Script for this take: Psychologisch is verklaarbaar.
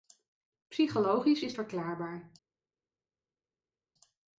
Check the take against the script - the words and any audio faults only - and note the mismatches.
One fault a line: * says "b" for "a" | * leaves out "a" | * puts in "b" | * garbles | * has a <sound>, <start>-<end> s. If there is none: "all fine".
all fine